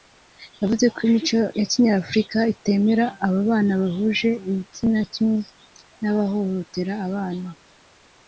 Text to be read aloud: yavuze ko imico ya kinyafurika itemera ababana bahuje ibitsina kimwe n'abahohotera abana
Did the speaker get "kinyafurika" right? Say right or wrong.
right